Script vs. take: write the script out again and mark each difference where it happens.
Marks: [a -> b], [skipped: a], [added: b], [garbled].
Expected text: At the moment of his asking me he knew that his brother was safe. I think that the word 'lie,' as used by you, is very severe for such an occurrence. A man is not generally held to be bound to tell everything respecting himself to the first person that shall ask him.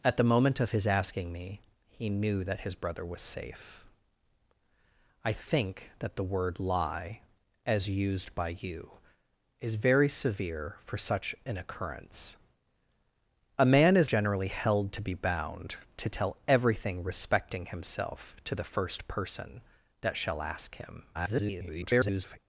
At the moment of his asking me he knew that his brother was safe. I think that the word 'lie,' as used by you, is very severe for such an occurrence. A man is [skipped: not] generally held to be bound to tell everything respecting himself to the first person that shall ask him. [garbled]